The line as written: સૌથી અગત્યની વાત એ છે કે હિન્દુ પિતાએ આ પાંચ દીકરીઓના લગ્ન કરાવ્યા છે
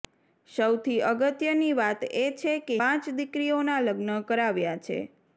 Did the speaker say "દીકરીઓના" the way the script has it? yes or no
yes